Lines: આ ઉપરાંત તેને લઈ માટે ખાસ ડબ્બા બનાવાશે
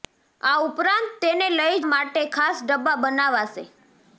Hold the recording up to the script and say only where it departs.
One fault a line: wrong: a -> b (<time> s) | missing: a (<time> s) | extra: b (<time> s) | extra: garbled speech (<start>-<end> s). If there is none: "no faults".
no faults